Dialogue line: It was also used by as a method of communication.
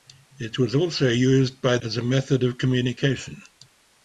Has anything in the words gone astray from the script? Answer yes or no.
no